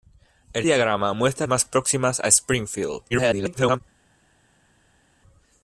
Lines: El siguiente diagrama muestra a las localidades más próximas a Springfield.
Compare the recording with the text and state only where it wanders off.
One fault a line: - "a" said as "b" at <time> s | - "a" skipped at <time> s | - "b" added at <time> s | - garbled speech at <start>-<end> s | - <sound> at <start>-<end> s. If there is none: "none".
- "siguiente" skipped at 0.7 s
- "las localidades" skipped at 1.5 s
- garbled speech at 3.1-3.8 s